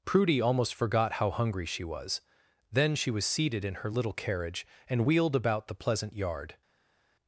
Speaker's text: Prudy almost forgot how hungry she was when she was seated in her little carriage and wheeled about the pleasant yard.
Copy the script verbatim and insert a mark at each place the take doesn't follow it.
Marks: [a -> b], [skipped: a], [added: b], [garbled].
Prudy almost forgot how hungry she was [when -> then] she was seated in her little carriage and wheeled about the pleasant yard.